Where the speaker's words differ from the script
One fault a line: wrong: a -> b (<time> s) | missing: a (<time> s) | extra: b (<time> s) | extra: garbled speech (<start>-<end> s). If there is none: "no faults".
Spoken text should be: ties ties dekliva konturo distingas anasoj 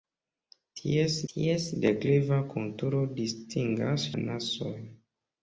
no faults